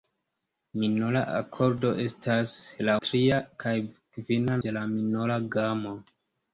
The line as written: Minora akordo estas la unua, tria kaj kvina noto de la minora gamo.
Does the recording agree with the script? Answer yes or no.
no